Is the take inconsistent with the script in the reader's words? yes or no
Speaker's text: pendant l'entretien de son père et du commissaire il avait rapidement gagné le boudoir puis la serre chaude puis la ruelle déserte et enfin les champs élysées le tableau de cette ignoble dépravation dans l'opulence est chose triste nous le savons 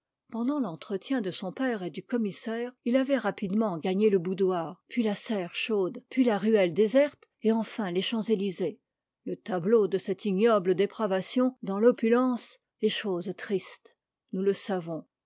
no